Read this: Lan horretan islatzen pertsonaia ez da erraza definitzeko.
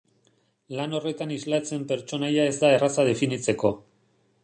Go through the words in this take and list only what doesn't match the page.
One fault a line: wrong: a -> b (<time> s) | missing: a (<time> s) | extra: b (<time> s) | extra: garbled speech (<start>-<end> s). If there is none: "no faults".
no faults